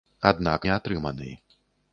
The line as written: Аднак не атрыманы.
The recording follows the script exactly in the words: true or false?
true